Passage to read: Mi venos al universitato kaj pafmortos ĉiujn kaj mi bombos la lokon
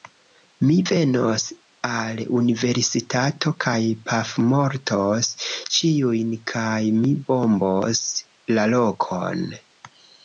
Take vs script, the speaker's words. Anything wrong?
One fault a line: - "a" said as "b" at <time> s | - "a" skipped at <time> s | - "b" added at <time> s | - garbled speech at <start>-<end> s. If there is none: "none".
none